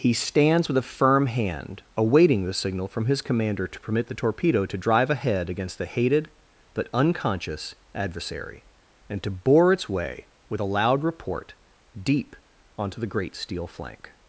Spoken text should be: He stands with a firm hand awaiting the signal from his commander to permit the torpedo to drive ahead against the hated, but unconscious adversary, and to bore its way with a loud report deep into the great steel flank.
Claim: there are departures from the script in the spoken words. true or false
true